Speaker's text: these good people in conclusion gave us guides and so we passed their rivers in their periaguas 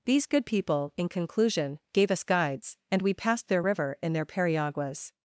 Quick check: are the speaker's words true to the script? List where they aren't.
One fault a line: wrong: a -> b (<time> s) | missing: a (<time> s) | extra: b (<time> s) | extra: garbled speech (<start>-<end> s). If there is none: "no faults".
missing: so (3.0 s)
wrong: rivers -> river (3.6 s)